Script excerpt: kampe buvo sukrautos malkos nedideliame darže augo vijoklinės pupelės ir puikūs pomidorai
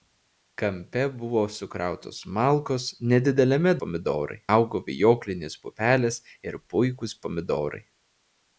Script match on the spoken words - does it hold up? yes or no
no